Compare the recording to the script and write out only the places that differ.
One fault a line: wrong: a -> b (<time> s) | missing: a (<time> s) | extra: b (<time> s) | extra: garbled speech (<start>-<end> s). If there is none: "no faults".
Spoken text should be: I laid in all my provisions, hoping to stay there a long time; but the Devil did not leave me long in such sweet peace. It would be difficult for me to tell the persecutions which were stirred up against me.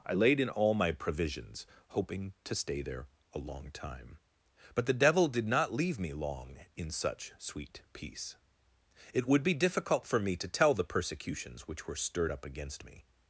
no faults